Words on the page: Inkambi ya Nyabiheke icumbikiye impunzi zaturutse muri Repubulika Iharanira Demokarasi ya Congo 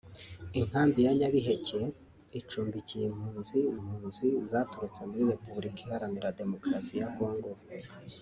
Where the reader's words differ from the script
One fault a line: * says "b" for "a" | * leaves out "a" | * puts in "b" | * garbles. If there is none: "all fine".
* puts in "impunzi"